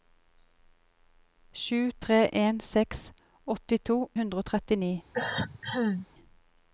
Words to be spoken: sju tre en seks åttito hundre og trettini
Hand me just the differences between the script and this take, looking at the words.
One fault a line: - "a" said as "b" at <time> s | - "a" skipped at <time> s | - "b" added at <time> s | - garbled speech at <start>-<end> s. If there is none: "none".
none